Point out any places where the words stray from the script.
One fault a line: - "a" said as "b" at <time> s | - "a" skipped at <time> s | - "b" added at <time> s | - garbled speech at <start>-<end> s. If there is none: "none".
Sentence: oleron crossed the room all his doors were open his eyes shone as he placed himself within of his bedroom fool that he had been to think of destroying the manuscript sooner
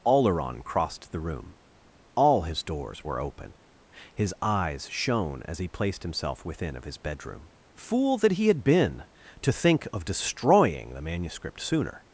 none